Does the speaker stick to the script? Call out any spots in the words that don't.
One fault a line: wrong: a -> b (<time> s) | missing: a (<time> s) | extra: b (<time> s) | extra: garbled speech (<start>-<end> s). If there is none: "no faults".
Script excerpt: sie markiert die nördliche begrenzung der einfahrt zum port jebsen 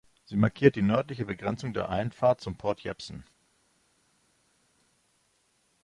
no faults